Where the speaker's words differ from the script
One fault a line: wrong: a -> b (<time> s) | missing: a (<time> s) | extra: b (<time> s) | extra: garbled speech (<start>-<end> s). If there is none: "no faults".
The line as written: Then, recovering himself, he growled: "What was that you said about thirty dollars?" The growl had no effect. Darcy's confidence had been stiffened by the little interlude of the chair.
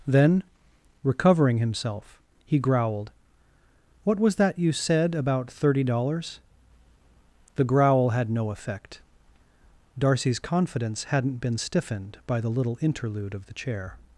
wrong: had -> hadn't (11.1 s)